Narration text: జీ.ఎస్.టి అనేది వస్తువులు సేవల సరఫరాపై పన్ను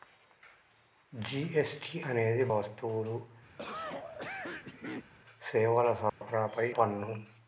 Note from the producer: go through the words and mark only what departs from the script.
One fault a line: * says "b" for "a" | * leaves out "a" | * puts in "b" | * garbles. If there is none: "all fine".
all fine